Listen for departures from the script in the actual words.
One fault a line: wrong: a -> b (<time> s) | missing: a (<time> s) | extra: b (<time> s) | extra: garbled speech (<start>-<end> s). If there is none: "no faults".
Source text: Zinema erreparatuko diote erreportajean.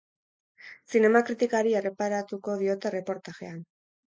extra: kritikari (1.3 s)